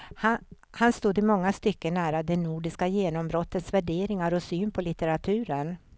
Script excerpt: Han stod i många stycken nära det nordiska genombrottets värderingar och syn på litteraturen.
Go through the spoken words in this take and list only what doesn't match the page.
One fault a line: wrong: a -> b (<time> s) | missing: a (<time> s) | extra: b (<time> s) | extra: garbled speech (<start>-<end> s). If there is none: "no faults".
no faults